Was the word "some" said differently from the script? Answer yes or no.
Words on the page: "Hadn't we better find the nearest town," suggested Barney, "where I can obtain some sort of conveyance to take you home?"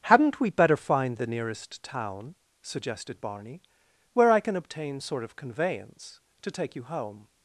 yes